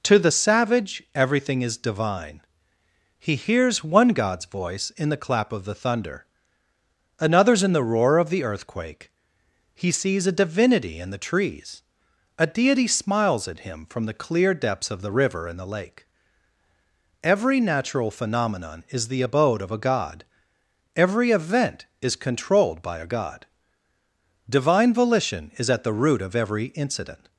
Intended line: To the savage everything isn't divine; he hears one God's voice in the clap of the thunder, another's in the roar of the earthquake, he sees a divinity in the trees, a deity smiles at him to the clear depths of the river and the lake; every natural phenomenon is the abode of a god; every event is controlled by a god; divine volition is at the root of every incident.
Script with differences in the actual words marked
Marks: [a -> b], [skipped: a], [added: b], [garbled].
To the savage everything [isn't -> is] divine; he hears one God's voice in the clap of the thunder, another's in the roar of the earthquake, he sees a divinity in the trees, a deity smiles at him [to -> from] the clear depths of the river and the lake; every natural phenomenon is the abode of a god; every event is controlled by a god; divine volition is at the root of every incident.